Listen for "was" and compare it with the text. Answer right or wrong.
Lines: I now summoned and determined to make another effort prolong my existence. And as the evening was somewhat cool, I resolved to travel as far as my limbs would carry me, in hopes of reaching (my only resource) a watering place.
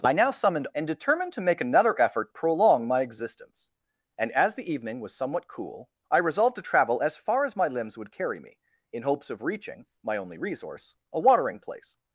right